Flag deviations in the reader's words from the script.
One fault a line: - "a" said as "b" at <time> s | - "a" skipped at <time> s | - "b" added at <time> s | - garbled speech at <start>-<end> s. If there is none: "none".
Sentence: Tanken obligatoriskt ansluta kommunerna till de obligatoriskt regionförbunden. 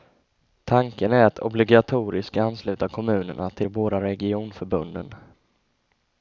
- "är att" added at 1.1 s
- "obligatoriskt" said as "båda" at 3.7 s